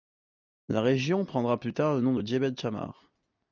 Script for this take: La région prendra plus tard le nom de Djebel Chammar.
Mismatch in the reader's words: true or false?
false